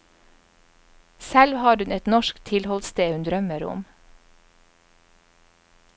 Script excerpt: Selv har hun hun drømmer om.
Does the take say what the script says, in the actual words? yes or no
no